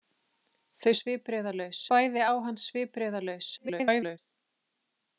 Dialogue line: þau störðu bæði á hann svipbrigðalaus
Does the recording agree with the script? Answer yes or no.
no